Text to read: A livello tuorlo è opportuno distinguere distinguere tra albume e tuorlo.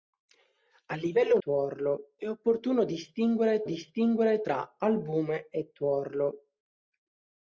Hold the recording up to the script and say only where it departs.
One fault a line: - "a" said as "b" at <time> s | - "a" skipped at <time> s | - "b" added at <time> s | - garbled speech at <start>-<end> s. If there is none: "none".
none